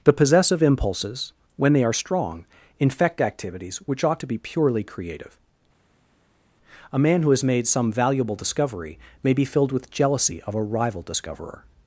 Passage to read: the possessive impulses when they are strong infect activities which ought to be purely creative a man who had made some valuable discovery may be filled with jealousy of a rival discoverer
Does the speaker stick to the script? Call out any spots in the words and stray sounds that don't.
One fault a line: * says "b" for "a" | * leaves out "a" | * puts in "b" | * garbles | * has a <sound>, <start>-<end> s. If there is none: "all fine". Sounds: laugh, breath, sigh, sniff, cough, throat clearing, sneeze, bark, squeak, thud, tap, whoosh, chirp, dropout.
* says "has" for "had"